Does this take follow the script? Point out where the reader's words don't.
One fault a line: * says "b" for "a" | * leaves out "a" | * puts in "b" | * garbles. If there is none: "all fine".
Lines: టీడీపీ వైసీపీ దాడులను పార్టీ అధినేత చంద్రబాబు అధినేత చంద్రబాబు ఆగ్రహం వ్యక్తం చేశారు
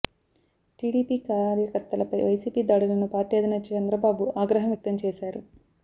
* puts in "కార్యకర్తలపై"
* leaves out "అధినేత చంద్రబాబు"